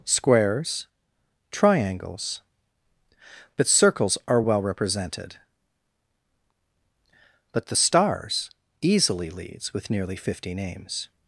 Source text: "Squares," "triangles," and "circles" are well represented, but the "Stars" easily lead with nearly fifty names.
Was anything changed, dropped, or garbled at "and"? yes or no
yes